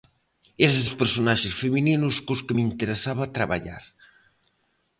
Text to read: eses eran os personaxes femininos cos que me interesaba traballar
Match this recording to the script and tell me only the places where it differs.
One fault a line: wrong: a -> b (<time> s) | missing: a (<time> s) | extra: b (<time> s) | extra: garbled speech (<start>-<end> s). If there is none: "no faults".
missing: eran (0.8 s)